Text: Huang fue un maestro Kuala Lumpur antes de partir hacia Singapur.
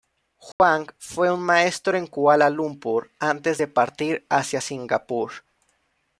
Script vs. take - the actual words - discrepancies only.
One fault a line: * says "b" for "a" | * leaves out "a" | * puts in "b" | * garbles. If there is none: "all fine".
* puts in "en"